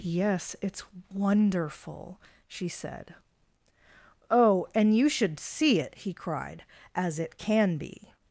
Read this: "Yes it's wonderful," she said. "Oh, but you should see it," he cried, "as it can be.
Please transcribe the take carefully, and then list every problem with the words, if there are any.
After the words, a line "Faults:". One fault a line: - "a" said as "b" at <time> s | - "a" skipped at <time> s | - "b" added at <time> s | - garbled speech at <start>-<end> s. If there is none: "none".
"Yes it's wonderful," she said. "Oh, and you should see it," he cried, "as it can be.
Faults:
- "but" said as "and" at 4.7 s